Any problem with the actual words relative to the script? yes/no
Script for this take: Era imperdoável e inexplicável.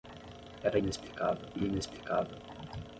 yes